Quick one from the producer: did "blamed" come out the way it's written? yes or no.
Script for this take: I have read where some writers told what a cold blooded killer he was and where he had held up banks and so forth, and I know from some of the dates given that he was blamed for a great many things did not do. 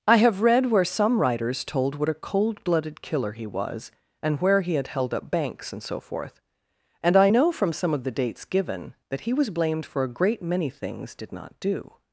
yes